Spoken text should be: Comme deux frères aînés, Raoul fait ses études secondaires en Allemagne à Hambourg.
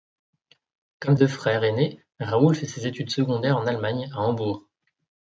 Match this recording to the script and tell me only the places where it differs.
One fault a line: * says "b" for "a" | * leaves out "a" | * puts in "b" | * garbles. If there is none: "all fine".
all fine